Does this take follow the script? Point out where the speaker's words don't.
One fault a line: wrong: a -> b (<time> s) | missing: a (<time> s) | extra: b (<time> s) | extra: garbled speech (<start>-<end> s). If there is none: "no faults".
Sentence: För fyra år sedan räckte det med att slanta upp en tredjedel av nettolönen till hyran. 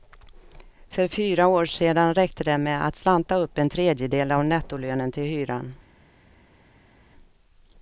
no faults